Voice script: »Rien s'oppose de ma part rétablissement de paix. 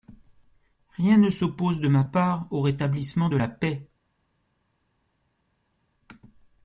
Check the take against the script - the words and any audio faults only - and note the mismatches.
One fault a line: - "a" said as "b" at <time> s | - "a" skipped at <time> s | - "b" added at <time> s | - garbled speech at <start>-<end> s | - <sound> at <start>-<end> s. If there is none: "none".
- "ne" added at 1.2 s
- "au" added at 2.5 s
- "la" added at 3.3 s